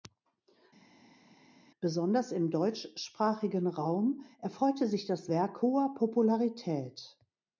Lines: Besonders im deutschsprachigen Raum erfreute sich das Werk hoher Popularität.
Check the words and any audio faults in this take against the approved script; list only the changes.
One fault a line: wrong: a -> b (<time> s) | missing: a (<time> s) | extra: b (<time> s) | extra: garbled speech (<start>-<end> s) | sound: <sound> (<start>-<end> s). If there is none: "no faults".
no faults